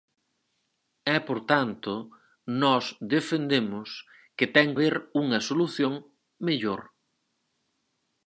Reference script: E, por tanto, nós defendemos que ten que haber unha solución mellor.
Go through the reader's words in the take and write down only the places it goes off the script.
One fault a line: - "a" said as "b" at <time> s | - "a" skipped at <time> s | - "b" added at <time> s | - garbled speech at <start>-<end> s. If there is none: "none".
- "que" skipped at 4.7 s